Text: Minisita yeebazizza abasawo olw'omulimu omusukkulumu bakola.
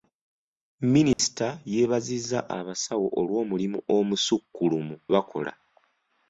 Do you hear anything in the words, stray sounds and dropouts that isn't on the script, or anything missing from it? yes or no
yes